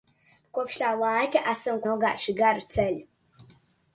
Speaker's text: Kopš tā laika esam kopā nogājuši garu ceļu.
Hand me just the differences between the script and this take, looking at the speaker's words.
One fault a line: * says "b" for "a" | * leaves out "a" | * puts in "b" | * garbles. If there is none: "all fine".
* leaves out "kopā"